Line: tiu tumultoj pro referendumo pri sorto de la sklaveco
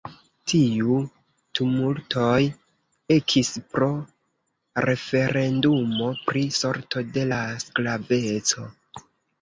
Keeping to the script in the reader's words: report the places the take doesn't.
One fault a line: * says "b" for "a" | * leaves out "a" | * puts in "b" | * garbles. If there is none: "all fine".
* puts in "ekis"